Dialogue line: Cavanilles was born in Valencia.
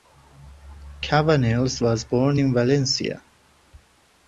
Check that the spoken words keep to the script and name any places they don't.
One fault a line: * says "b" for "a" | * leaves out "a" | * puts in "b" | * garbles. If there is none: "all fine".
all fine